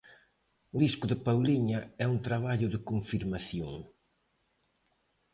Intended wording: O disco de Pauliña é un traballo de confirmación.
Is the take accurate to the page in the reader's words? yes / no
yes